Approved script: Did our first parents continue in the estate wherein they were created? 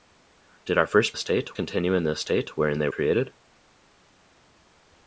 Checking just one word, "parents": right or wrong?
wrong